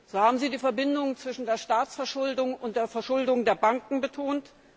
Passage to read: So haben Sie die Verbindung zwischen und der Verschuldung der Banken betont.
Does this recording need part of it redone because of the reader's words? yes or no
yes